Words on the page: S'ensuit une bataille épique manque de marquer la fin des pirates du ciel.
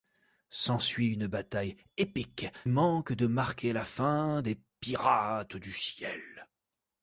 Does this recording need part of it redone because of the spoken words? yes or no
no